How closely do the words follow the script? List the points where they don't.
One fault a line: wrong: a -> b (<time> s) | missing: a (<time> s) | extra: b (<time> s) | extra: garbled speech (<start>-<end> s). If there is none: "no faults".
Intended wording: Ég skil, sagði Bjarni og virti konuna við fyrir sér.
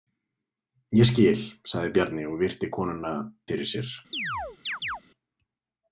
missing: við (3.1 s)